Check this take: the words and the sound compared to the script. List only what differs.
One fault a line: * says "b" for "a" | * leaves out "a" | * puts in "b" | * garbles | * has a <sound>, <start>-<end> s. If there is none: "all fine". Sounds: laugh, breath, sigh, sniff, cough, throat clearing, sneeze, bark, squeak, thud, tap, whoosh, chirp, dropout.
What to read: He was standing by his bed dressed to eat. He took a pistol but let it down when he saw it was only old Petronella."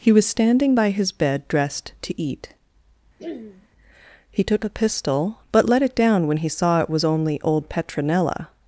* has a throat clearing, 3.2-3.7 s